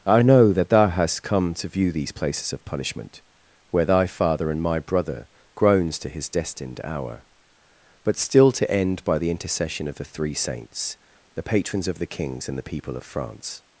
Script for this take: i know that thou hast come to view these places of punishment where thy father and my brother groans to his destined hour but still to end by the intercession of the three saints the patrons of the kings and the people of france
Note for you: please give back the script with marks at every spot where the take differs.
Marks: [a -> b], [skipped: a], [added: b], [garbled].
i know that thou hast come to view these places of punishment where thy father and my brother groans to his destined hour but still to end by the intercession of the three saints the patrons of the kings and the people of france